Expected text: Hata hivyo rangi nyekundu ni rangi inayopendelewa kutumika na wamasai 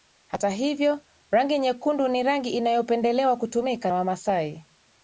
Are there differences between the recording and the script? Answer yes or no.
yes